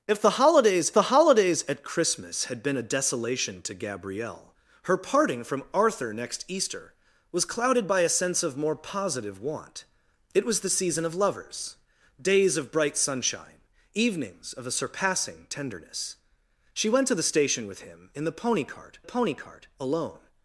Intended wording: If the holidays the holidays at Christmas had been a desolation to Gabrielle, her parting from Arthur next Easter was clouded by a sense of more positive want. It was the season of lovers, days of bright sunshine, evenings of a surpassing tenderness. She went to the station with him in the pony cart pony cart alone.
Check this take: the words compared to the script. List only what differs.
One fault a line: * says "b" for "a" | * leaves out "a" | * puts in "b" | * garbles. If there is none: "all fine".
all fine